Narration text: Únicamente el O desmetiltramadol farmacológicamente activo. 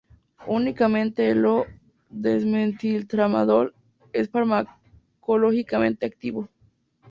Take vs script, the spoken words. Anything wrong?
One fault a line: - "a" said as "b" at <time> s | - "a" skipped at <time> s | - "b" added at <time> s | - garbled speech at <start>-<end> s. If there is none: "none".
- "es" added at 4.1 s